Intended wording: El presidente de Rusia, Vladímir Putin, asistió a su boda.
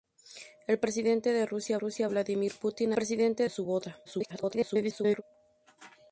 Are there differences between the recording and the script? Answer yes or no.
yes